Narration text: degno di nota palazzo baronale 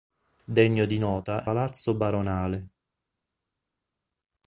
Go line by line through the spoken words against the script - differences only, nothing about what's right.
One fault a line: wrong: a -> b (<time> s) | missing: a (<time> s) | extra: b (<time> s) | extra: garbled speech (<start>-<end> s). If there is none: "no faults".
no faults